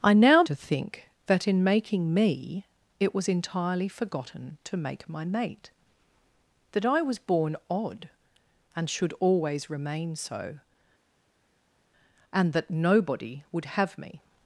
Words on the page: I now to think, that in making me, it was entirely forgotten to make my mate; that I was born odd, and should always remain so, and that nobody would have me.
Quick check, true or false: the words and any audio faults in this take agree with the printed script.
true